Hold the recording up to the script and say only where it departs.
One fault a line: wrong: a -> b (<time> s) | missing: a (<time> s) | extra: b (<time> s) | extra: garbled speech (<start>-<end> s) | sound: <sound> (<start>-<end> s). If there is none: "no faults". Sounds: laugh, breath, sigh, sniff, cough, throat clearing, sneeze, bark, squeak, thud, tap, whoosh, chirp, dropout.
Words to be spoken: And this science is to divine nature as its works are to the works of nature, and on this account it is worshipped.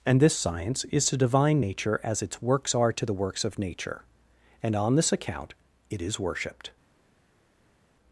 no faults